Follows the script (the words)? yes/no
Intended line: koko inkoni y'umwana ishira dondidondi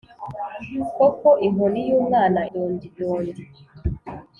no